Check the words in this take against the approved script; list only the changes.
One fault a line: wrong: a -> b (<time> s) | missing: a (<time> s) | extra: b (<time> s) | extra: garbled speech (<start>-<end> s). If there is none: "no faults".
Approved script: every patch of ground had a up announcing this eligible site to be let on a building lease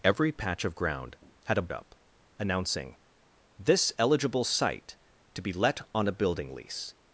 no faults